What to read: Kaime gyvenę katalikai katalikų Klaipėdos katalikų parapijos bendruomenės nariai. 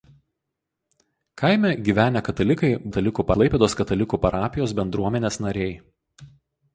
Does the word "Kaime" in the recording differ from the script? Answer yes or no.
no